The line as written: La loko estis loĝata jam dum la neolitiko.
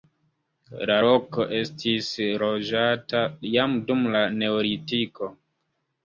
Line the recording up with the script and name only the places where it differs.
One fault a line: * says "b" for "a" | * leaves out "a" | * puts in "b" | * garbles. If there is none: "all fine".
all fine